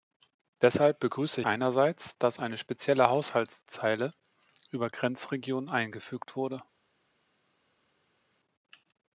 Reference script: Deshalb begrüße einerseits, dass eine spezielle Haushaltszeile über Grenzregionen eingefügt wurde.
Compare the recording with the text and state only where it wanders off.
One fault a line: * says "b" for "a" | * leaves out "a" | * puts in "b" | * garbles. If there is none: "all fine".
all fine